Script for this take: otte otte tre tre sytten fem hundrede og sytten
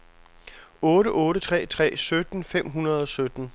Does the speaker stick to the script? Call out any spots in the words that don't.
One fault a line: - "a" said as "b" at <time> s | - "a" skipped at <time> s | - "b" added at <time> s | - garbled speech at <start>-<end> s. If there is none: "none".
none